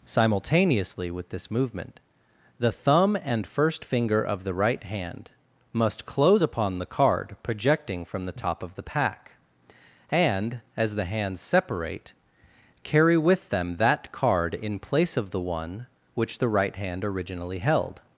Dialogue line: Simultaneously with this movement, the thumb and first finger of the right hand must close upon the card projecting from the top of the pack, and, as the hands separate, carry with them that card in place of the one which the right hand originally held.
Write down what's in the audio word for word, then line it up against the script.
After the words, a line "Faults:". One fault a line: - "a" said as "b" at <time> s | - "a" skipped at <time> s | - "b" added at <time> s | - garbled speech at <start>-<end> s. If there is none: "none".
Simultaneously with this movement, the thumb and first finger of the right hand must close upon the card projecting from the top of the pack, and, as the hands separate, carry with them that card in place of the one which the right hand originally held.
Faults:
none